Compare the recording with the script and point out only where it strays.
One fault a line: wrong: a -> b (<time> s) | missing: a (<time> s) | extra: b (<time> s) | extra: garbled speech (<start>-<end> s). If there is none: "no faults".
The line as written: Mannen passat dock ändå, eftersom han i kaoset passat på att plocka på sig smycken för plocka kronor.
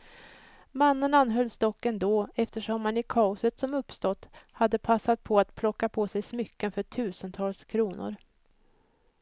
wrong: passat -> anhölls (1.1 s)
extra: som uppstått hade (3.6 s)
wrong: plocka -> tusentals (6.8 s)